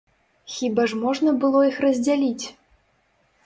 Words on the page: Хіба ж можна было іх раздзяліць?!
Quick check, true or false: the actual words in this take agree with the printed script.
true